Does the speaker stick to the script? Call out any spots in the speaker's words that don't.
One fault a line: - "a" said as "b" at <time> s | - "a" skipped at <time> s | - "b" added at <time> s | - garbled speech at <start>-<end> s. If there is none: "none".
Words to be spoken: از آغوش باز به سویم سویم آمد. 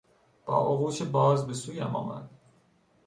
- "از" said as "با" at 0.5 s
- "سویم" skipped at 1.9 s